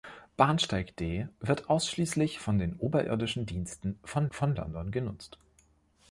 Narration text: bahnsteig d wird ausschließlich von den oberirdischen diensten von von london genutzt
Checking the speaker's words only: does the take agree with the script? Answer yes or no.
yes